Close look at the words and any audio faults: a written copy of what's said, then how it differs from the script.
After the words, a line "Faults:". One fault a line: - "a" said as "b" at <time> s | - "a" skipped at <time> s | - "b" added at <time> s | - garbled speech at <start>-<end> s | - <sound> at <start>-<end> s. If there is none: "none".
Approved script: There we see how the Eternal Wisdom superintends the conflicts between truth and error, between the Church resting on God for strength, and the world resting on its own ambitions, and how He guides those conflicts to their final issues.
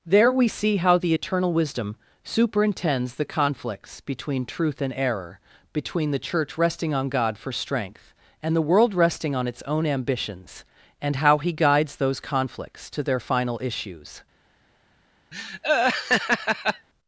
There we see how the Eternal Wisdom superintends the conflicts between truth and error, between the Church resting on God for strength, and the world resting on its own ambitions, and how He guides those conflicts to their final issues.
Faults:
- laugh at 15.3-16.9 s